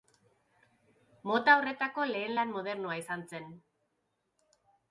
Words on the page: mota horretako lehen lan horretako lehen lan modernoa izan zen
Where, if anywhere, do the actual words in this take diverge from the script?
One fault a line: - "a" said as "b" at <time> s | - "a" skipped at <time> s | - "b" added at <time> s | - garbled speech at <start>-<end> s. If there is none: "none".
- "horretako lehen lan" skipped at 2.6 s